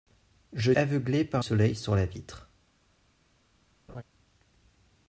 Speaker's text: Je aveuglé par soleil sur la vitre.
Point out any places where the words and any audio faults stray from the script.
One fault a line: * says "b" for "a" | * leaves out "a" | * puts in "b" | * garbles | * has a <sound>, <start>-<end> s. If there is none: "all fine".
* has a laugh, 3.9-4.0 s